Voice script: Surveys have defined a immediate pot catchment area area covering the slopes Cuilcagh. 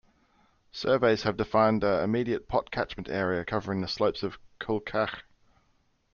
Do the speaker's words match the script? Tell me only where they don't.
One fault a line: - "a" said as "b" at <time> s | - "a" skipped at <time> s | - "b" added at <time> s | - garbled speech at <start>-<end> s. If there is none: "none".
- "area" skipped at 3.4 s
- "of" added at 4.2 s